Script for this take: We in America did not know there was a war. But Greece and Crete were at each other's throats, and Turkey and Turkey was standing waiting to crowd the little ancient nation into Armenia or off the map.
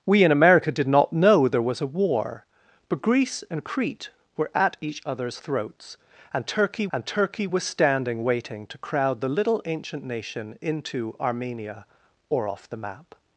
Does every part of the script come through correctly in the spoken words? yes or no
yes